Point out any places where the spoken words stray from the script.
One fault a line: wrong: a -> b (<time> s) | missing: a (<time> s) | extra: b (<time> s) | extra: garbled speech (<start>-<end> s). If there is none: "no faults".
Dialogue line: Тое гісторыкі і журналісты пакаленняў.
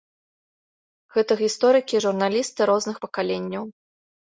wrong: Тое -> Гэта (1.2 s)
extra: розных (2.8 s)